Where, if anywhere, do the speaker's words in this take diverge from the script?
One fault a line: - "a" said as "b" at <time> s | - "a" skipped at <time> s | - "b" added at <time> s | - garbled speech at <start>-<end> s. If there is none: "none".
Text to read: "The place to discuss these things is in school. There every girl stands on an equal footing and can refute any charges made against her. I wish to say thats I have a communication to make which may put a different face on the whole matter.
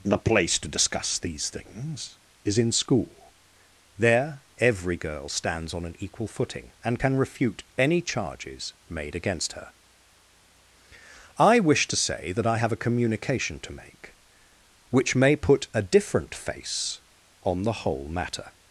- "thats" said as "that" at 12.3 s